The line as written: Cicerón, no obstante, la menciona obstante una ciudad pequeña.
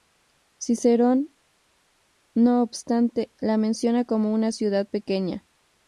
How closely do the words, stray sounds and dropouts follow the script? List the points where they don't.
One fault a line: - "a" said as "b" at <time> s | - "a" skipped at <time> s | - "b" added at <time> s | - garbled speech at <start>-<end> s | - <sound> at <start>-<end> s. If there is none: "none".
- "obstante" said as "como" at 4.0 s